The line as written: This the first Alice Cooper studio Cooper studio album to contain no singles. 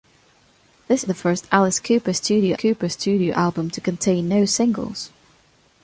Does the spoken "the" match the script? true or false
true